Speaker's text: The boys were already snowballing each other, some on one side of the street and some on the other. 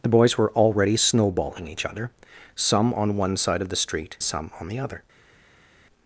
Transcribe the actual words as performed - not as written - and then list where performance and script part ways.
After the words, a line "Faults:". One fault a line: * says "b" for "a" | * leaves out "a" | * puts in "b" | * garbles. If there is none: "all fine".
The boys were already snowballing each other, some on one side of the street some on the other.
Faults:
* leaves out "and"